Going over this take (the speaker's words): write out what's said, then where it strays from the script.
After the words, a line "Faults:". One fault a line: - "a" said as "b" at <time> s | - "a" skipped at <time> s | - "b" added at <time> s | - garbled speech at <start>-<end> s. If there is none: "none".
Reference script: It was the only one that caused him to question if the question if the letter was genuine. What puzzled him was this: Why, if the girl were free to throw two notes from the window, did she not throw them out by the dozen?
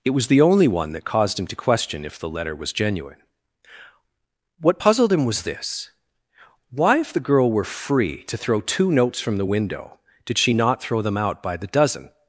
It was the only one that caused him to question if the letter was genuine. What puzzled him was this: Why, if the girl were free to throw two notes from the window, did she not throw them out by the dozen?
Faults:
- "question if the" skipped at 2.3 s